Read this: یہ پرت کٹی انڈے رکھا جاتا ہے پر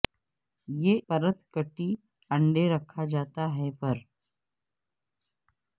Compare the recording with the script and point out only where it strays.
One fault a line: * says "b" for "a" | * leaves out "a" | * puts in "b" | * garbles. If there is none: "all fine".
all fine